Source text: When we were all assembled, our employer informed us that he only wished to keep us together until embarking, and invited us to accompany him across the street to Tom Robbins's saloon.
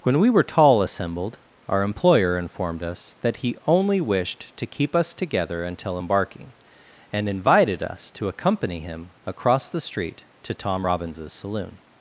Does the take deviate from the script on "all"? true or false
true